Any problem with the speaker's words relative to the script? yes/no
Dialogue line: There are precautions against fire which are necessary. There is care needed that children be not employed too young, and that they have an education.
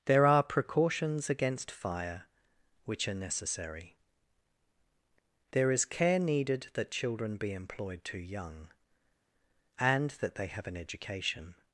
yes